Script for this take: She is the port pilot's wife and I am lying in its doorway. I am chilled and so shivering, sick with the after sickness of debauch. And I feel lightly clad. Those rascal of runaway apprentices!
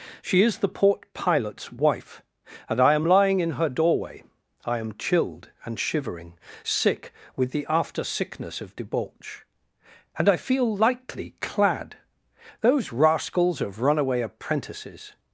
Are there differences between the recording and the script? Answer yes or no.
yes